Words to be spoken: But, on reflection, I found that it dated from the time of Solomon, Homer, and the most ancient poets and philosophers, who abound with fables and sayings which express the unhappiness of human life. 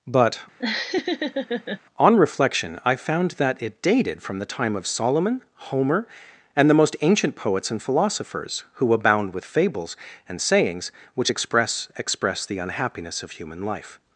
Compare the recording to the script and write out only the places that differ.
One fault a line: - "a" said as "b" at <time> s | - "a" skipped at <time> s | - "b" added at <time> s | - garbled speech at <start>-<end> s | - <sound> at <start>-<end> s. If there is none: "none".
- laugh at 0.6-1.8 s
- "express" added at 12.0 s